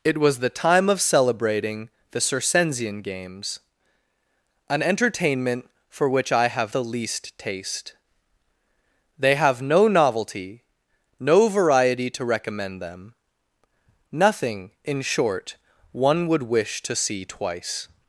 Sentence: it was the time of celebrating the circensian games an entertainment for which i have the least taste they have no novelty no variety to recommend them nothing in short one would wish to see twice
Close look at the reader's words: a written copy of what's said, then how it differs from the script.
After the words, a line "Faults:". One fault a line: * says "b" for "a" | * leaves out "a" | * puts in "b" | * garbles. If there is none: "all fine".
it was the time of celebrating the circensian games an entertainment for which i have the least taste they have no novelty no variety to recommend them nothing in short one would wish to see twice
Faults:
all fine